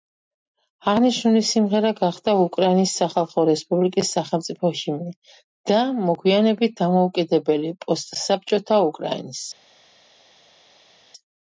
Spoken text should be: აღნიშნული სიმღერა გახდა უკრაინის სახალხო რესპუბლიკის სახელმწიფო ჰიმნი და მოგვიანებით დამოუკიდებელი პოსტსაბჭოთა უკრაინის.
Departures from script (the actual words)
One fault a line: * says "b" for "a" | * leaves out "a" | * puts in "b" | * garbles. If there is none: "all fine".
all fine